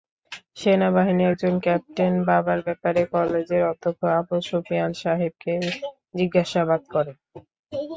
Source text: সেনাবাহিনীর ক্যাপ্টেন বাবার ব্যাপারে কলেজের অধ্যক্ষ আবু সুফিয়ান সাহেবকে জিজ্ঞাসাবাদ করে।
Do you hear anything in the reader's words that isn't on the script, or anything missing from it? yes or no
yes